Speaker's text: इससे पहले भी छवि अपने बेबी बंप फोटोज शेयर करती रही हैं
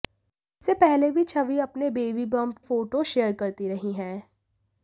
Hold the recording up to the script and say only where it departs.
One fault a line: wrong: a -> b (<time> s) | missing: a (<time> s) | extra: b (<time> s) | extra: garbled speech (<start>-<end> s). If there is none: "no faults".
no faults